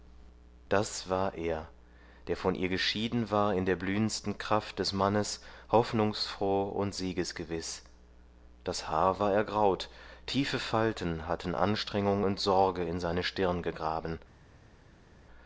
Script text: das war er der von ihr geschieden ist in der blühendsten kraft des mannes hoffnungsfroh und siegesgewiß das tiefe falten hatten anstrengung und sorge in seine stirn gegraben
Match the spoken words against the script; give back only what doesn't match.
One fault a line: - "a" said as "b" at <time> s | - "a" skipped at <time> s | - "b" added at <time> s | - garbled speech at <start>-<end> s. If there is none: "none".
- "ist" said as "war" at 3.3 s
- "haar war ergraut" added at 8.9 s